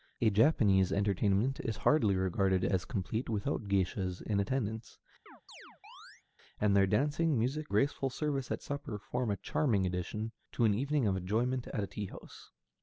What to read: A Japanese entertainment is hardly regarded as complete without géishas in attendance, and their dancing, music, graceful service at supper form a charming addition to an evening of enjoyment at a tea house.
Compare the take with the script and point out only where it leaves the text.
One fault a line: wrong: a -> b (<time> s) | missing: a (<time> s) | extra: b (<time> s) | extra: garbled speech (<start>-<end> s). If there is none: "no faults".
no faults